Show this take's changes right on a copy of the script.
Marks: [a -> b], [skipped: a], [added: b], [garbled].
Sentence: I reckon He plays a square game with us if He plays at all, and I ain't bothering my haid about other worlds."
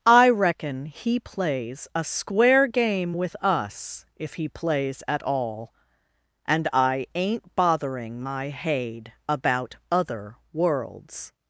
I reckon He plays a square game with us if He plays at all, and I ain't bothering my haid about other worlds."